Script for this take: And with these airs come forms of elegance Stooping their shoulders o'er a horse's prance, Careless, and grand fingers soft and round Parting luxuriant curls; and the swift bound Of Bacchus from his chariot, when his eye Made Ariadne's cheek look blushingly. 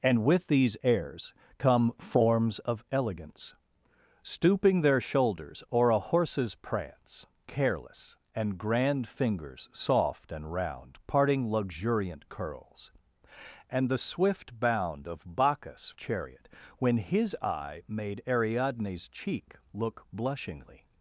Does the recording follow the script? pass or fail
fail